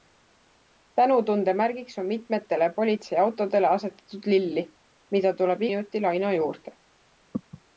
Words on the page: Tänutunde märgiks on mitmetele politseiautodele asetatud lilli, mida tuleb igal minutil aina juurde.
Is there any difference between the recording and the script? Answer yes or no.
yes